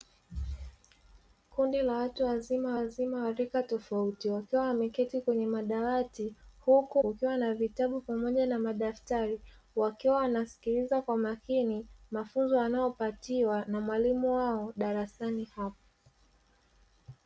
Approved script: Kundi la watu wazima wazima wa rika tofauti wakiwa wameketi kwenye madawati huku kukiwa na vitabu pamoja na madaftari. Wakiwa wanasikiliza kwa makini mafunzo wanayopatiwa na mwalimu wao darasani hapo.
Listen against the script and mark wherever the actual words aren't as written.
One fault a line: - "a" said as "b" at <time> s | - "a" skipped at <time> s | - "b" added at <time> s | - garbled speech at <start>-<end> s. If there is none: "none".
none